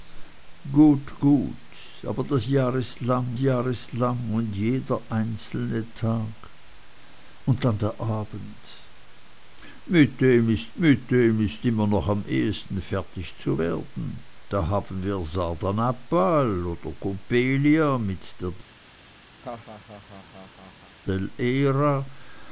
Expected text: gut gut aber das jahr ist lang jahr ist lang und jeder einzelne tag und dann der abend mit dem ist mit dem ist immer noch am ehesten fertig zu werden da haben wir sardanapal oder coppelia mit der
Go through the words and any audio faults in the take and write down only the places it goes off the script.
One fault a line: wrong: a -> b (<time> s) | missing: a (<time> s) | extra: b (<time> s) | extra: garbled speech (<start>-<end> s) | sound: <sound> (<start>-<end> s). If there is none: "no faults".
sound: laugh (19.4-21.0 s)